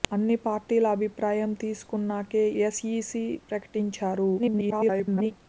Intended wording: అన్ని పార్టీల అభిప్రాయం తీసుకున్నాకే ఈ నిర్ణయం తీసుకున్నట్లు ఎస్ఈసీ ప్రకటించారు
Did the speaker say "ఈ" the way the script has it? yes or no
no